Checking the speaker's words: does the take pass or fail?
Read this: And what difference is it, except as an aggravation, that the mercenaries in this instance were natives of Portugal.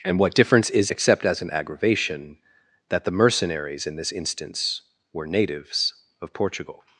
fail